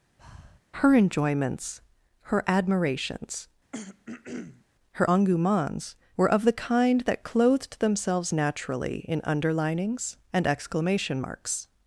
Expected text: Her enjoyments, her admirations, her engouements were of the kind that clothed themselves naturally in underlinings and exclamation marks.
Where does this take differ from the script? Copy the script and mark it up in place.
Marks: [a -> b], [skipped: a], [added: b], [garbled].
Her enjoyments, her admirations, her engouements were of the kind that clothed themselves naturally in underlinings and exclamation marks.